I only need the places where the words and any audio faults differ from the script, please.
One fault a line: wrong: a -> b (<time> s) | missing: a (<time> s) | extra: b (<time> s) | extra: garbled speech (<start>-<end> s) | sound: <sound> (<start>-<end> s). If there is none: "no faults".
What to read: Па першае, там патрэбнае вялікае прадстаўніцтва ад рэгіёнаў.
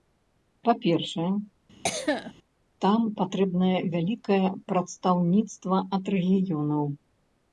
sound: cough (1.8-2.3 s)